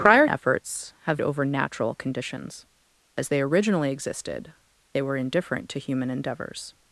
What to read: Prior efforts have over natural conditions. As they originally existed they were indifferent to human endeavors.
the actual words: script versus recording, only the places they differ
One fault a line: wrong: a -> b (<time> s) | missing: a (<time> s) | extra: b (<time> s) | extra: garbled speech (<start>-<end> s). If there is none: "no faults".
no faults